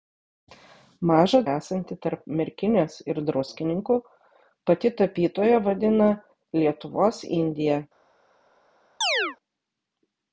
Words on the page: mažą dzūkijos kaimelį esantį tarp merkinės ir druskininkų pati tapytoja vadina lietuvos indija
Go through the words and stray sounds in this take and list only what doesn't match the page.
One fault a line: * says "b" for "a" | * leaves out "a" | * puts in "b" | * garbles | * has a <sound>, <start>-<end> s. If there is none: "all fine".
* leaves out "dzūkijos kaimelį"
* has a chirp, 9.0-9.4 s